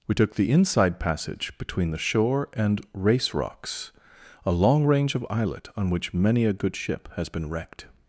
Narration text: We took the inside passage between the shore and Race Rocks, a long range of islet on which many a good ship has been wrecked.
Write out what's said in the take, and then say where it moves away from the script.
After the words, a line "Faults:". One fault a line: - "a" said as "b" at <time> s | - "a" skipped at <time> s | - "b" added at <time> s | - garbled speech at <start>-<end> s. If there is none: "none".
We took the inside passage between the shore and Race Rocks, a long range of islet on which many a good ship has been wrecked.
Faults:
none